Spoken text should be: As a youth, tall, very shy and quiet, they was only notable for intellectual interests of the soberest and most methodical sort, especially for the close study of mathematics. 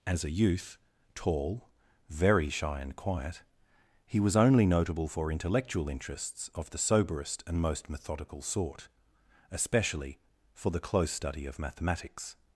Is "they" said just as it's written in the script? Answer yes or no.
no